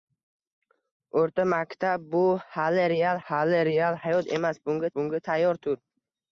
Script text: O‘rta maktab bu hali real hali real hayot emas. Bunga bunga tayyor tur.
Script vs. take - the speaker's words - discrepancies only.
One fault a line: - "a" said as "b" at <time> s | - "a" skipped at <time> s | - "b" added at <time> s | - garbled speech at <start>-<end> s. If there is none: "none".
none